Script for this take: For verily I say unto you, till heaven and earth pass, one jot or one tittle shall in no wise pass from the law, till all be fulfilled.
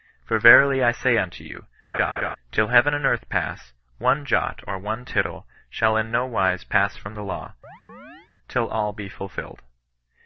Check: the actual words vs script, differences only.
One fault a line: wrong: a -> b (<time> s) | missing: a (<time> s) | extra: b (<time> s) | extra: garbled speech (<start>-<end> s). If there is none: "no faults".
no faults